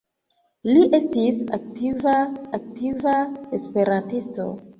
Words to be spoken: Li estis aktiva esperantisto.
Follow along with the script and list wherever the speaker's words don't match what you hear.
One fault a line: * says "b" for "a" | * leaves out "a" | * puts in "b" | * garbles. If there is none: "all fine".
* puts in "aktiva"